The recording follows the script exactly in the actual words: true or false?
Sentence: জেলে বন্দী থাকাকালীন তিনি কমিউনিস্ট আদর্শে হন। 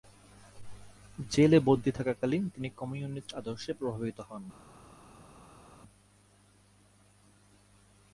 false